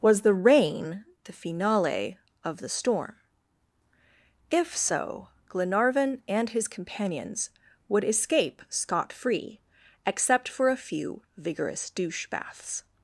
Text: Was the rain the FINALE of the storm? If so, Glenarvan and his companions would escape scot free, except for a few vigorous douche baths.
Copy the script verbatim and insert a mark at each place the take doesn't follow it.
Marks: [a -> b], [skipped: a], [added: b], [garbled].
Was the rain the FINALE of the storm? If so, Glenarvan and his companions would escape scot free, except for a few vigorous douche baths.